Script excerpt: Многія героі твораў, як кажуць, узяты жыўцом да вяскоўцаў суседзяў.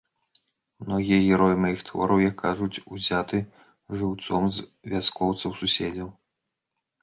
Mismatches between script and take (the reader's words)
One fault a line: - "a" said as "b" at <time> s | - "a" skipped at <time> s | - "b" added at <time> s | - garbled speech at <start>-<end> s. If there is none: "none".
- "маіх" added at 1.6 s
- "да" said as "з" at 4.6 s